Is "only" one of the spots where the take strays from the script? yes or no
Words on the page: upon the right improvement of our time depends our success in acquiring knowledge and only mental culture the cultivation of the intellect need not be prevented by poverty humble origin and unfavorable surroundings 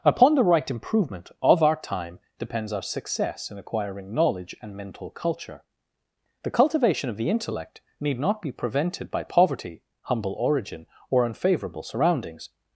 yes